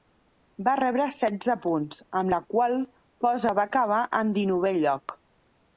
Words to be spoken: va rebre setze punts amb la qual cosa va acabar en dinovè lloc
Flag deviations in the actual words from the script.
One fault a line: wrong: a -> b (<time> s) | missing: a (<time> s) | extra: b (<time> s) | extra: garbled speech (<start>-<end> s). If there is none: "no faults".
no faults